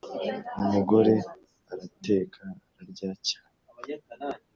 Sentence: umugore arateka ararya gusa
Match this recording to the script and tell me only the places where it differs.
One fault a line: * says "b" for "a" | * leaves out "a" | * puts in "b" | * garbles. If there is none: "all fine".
* says "cyane" for "gusa"